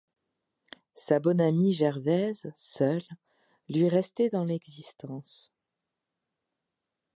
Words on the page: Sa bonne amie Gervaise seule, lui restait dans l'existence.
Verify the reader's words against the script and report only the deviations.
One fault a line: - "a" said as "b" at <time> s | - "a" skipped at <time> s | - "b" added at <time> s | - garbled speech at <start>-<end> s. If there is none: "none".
none